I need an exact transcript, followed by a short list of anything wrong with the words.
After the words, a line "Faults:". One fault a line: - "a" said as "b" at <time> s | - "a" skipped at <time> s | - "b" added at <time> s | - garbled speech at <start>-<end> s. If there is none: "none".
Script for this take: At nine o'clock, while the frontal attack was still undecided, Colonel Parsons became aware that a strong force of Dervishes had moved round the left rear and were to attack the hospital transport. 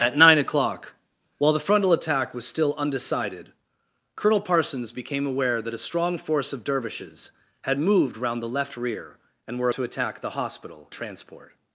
At nine o'clock, while the frontal attack was still undecided, Colonel Parsons became aware that a strong force of Dervishes had moved round the left rear and were to attack the hospital transport.
Faults:
none